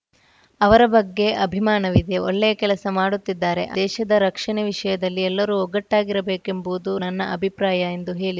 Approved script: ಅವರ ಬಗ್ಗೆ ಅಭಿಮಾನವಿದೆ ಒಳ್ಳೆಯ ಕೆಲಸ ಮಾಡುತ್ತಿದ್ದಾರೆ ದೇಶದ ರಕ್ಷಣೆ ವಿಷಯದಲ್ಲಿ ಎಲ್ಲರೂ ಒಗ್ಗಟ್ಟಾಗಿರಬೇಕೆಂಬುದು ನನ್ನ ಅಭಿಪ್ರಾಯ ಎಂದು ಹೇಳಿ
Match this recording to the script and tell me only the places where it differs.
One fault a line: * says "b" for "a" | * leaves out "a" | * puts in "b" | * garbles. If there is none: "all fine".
all fine